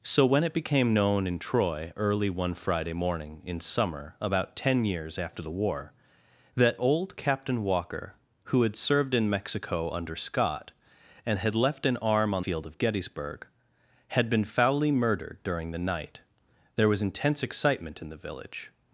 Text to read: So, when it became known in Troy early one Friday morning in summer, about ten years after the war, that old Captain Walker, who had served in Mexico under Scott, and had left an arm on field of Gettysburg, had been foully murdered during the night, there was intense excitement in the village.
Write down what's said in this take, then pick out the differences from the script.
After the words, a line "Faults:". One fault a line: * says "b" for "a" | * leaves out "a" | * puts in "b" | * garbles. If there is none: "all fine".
So, when it became known in Troy early one Friday morning in summer, about ten years after the war, that old Captain Walker, who had served in Mexico under Scott, and had left an arm on field of Gettysburg, had been foully murdered during the night, there was intense excitement in the village.
Faults:
all fine